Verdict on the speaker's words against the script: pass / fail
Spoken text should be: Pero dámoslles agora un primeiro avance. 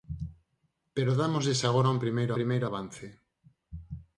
fail